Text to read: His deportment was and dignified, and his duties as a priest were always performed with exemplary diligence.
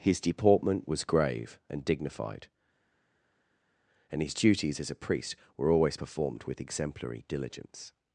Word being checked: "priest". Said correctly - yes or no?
yes